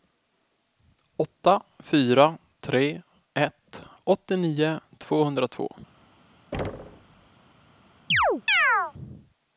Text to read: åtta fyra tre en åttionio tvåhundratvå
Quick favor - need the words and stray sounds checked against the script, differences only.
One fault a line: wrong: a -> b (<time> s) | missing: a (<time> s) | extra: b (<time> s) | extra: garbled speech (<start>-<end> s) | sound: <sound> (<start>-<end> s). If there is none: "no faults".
wrong: en -> ett (3.3 s)
sound: thud (6.5-7.3 s)
sound: chirp (8.1-8.9 s)